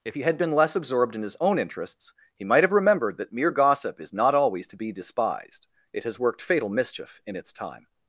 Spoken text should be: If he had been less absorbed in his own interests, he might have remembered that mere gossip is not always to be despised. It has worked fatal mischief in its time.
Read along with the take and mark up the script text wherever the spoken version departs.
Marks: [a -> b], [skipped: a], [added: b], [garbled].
If he had been less absorbed in his own interests, he might have remembered that mere gossip is not always to be despised. It has worked fatal mischief in its time.